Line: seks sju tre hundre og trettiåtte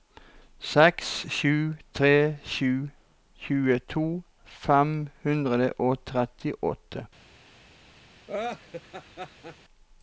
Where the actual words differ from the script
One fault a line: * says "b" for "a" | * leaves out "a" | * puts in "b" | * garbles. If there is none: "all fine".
* puts in "sju tjueto fem"